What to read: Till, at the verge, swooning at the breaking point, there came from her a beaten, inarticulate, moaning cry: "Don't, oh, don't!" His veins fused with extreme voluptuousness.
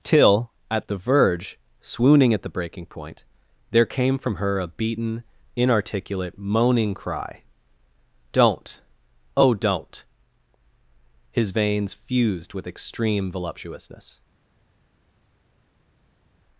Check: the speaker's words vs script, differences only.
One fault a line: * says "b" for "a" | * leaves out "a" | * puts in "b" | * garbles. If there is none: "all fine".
all fine